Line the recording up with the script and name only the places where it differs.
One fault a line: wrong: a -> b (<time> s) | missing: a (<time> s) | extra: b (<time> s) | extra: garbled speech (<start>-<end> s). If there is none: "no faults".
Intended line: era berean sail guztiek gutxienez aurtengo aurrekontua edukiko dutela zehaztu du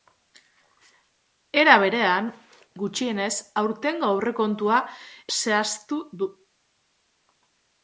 missing: sail guztiek (2.3 s)
missing: edukiko dutela (4.8 s)